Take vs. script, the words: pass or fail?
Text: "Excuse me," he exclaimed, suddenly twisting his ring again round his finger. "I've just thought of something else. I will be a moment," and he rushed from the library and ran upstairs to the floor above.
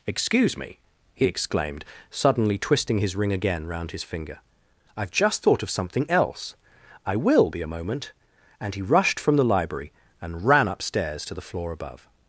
pass